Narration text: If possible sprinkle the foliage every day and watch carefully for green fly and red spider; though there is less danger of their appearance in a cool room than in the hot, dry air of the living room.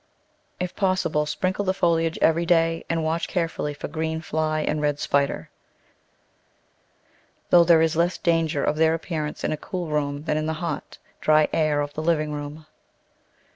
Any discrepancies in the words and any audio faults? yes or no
no